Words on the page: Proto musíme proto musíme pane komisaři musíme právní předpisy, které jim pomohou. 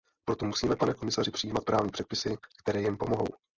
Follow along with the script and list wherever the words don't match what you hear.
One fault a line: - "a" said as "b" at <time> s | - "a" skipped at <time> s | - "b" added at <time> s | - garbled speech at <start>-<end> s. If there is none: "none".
- "proto musíme" skipped at 0.8 s
- "musíme" said as "přijímat" at 1.3 s